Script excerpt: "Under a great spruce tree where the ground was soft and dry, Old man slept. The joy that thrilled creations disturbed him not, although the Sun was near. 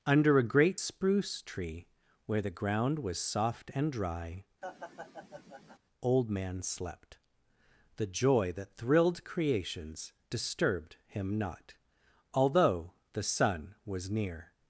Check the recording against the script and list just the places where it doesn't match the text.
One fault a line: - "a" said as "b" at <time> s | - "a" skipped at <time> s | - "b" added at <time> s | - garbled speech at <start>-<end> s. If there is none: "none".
none